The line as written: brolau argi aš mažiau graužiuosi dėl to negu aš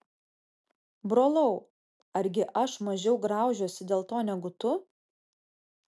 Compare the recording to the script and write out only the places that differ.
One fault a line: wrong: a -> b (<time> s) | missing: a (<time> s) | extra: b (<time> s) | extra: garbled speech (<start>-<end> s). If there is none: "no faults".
wrong: aš -> tu (4.6 s)